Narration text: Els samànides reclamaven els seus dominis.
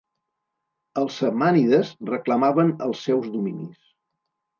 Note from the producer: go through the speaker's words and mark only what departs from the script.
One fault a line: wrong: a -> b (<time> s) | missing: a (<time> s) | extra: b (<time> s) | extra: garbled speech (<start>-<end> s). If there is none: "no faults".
no faults